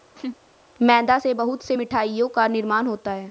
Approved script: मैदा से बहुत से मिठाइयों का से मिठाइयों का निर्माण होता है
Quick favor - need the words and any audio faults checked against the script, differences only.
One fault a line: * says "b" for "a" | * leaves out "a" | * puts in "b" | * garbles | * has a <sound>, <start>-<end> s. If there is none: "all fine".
* has a laugh, 0.1-0.4 s
* leaves out "से मिठाइयों का"